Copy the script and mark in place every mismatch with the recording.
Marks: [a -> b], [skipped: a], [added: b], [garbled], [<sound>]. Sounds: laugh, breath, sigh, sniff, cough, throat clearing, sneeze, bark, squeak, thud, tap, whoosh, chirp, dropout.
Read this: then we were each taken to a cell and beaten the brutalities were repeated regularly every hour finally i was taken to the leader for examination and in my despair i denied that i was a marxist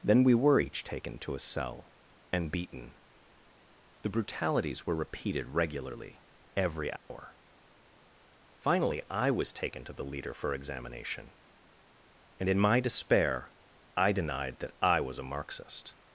then we were each taken to a cell and beaten the brutalities were repeated regularly every hour [dropout] finally i was taken to the leader for examination and in my despair i denied that i was a marxist